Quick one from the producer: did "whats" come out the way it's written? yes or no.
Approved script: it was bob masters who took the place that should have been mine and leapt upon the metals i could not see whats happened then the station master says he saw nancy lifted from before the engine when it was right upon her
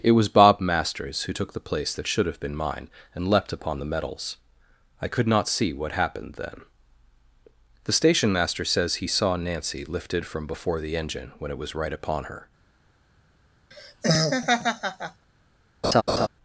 no